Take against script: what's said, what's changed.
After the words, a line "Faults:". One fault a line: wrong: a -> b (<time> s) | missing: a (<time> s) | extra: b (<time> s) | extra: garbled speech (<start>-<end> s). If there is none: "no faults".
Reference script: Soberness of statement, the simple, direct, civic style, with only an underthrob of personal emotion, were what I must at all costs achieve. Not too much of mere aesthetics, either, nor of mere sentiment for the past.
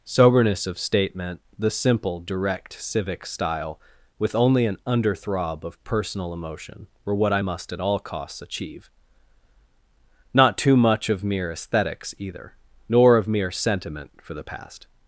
Soberness of statement, the simple, direct, civic style, with only an underthrob of personal emotion, were what I must at all costs achieve. Not too much of mere aesthetics, either, nor of mere sentiment for the past.
Faults:
no faults